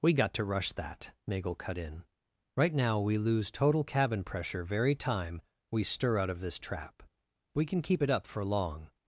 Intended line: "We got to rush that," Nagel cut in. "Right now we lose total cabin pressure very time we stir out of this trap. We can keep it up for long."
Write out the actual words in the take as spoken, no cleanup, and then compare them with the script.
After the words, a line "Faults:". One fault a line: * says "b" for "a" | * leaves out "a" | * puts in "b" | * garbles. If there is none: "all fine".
"We got to rush that," Nagel cut in. "Right now we lose total cabin pressure very time we stir out of this trap. We can keep it up for long."
Faults:
all fine